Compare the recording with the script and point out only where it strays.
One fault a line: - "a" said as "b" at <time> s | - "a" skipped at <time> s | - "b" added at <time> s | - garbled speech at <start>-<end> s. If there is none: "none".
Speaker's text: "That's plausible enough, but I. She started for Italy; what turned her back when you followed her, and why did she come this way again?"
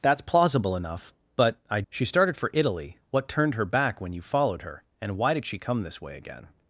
none